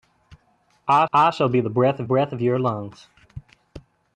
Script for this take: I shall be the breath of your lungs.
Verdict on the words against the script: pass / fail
fail